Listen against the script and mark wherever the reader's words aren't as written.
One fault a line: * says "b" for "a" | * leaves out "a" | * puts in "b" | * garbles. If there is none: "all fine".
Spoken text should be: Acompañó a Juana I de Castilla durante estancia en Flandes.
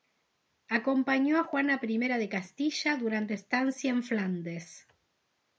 all fine